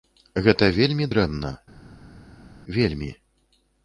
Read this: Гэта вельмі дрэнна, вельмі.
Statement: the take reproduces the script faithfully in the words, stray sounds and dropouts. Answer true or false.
true